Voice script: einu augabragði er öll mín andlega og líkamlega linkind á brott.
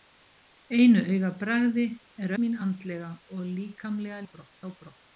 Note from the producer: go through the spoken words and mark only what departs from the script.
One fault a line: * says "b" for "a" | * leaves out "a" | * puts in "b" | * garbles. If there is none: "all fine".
* leaves out "öll"
* says "brott" for "linkind"